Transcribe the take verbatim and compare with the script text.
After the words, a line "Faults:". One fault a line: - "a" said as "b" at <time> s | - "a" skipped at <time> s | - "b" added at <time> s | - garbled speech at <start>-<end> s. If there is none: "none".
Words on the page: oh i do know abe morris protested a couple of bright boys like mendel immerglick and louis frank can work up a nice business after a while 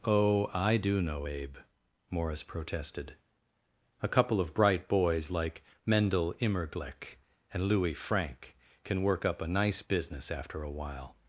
oh i do know abe morris protested a couple of bright boys like mendel immerglick and louis frank can work up a nice business after a while
Faults:
none